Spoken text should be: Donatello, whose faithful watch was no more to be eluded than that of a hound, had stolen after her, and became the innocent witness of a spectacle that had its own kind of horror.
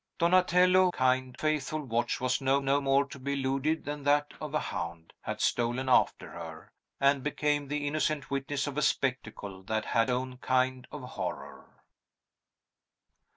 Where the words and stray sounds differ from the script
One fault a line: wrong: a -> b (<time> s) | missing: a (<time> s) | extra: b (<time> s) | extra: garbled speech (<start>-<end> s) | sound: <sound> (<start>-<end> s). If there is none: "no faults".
wrong: whose -> kind (0.9 s)
extra: no (2.6 s)
missing: its (10.1 s)